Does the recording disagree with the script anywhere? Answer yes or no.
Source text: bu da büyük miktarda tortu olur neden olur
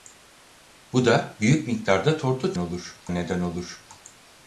no